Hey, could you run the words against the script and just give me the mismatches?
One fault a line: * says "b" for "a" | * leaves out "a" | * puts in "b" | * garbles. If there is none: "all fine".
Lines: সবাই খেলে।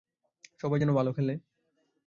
* puts in "যেন ভালো"